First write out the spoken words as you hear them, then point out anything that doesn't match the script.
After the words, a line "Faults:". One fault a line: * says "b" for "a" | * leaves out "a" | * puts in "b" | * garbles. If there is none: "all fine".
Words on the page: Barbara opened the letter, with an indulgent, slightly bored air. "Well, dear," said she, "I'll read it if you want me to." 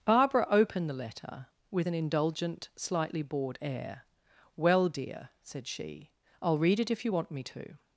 Barbara opened the letter, with an indulgent, slightly bored air. "Well, dear," said she, "I'll read it if you want me to."
Faults:
all fine